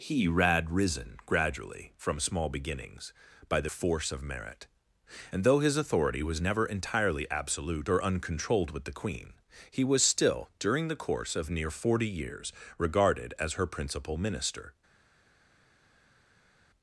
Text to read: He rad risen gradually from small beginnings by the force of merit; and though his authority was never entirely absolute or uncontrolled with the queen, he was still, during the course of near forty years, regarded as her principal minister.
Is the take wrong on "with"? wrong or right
right